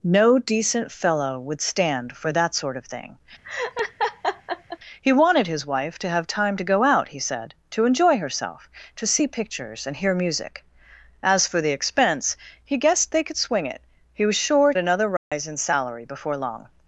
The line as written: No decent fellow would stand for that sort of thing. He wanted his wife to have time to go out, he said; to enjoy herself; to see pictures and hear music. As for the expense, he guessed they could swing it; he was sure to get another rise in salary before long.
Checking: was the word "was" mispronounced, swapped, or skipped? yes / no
no